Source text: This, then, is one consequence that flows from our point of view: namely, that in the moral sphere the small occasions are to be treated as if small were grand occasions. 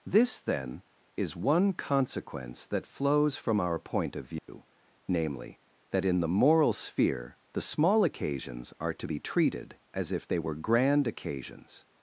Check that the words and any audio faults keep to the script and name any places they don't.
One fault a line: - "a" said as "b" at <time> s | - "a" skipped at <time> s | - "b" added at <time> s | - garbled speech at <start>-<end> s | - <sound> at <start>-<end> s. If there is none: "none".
- dropout at 4.4-4.5 s
- "small" said as "they" at 10.2 s